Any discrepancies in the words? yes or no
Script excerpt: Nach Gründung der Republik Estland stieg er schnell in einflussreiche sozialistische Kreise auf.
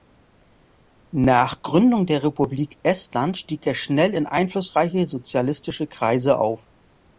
no